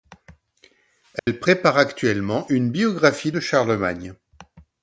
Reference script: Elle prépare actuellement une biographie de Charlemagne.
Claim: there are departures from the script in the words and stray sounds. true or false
true